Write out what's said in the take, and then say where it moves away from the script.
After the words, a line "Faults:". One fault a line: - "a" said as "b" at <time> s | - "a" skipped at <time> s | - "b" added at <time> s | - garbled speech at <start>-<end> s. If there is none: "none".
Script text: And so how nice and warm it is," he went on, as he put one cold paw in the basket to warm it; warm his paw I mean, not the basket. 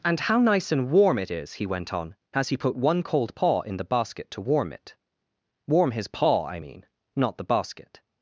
And how nice and warm it is," he went on, as he put one cold paw in the basket to warm it; warm his paw I mean, not the basket.
Faults:
- "so" skipped at 0.2 s